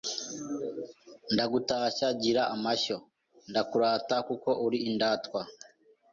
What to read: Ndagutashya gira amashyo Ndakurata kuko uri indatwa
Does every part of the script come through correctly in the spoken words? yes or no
yes